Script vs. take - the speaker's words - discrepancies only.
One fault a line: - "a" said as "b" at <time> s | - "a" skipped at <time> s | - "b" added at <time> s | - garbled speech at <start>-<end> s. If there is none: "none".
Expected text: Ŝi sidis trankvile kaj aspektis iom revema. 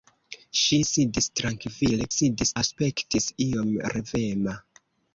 - "kaj" said as "sidis" at 2.2 s